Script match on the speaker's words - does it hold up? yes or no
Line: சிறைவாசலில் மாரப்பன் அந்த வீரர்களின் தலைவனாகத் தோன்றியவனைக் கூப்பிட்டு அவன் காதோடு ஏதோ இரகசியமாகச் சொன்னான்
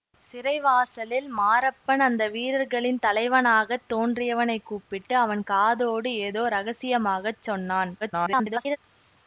no